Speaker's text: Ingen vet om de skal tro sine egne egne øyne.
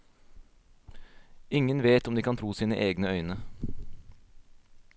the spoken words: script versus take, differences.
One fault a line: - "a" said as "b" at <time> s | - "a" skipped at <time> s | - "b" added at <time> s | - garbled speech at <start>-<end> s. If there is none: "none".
- "skal" said as "kan" at 2.2 s
- "egne" skipped at 3.1 s